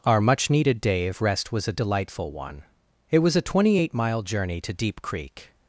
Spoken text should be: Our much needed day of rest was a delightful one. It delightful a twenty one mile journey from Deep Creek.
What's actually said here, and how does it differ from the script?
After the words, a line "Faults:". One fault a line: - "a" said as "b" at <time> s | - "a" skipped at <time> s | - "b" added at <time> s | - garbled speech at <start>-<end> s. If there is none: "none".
Our much needed day of rest was a delightful one. It was a twenty eight mile journey to Deep Creek.
Faults:
- "delightful" said as "was" at 3.2 s
- "one" said as "eight" at 3.8 s
- "from" said as "to" at 4.6 s